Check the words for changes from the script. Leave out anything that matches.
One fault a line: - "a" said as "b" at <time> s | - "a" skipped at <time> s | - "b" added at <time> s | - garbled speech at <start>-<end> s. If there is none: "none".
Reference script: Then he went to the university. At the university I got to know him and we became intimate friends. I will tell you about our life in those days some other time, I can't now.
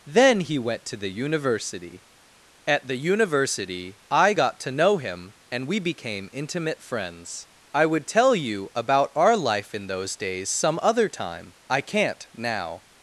- "will" said as "would" at 7.8 s